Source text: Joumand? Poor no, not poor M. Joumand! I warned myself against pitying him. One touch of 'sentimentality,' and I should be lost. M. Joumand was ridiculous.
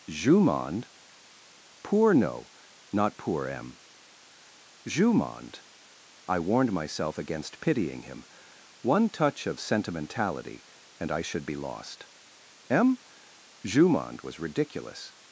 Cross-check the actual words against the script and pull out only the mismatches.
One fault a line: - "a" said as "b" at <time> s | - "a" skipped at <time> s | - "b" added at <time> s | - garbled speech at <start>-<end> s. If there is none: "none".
none